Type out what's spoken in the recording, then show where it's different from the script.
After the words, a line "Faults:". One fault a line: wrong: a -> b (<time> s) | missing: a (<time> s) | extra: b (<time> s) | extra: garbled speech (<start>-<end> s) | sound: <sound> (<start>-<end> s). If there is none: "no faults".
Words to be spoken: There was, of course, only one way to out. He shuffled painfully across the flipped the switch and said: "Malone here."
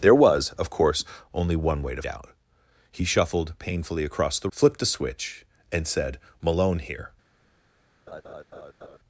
There was, of course, only one way to out. He shuffled painfully across the flipped the switch and said: "Malone here."
Faults:
sound: laugh (8.1-9.0 s)